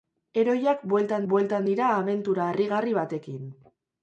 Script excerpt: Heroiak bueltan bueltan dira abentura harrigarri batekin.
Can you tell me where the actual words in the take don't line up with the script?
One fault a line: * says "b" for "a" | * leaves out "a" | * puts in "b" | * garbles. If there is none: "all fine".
all fine